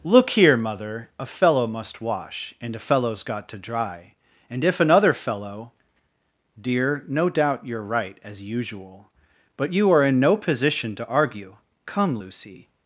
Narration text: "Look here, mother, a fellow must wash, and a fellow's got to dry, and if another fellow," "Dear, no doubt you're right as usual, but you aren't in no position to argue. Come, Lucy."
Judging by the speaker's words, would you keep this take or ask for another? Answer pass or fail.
fail